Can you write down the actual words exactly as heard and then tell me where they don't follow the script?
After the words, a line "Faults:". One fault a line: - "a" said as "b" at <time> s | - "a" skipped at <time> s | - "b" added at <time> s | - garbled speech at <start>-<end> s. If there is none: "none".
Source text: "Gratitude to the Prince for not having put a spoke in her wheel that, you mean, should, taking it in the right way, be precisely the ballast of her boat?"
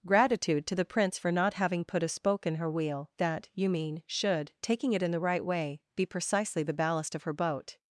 "Gratitude to the Prince for not having put a spoke in her wheel that, you mean, should, taking it in the right way, be precisely the ballast of her boat?"
Faults:
none